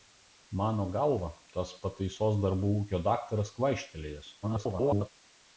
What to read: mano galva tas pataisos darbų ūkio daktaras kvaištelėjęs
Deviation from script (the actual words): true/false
true